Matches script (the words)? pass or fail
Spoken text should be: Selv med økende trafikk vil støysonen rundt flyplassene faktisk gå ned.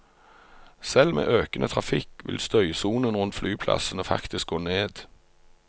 pass